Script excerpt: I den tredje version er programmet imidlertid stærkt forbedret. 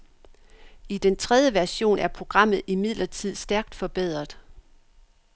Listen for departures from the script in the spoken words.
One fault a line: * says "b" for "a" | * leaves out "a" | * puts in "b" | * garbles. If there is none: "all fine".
all fine